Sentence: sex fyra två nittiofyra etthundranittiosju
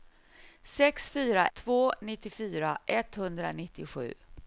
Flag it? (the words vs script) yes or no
no